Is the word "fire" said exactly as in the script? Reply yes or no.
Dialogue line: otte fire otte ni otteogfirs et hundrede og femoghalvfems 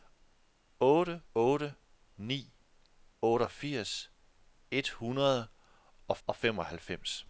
no